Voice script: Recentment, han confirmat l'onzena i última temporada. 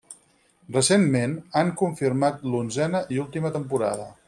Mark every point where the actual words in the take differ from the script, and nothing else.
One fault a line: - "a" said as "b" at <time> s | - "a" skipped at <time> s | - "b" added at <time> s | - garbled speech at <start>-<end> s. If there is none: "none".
none